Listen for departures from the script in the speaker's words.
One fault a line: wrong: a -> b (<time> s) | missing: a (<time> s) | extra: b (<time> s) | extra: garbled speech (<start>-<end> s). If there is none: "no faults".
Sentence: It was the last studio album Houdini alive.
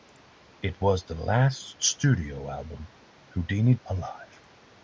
no faults